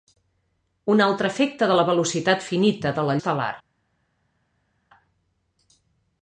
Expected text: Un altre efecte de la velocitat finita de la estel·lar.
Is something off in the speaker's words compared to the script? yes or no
no